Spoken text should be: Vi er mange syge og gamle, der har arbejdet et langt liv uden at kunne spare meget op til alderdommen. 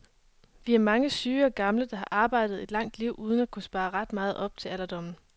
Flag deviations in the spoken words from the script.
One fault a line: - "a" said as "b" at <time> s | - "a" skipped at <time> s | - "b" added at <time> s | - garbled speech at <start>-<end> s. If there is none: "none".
- "ret" added at 3.9 s